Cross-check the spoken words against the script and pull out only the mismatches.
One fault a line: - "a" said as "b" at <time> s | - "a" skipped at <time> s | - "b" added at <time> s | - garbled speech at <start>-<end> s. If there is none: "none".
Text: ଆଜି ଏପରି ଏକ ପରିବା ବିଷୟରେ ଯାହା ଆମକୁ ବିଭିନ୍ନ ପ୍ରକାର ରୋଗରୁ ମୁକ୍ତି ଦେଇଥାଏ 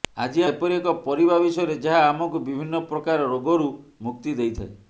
none